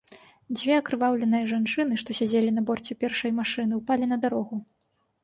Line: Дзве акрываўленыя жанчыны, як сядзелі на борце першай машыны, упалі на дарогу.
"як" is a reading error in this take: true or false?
true